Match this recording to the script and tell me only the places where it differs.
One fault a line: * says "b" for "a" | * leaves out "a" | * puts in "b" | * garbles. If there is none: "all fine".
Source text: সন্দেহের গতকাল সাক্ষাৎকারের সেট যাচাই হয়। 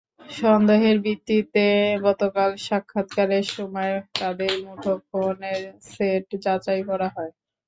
* puts in "ভিত্তিতে"
* puts in "সময় তাঁদের মুঠোফোনের"
* puts in "করা"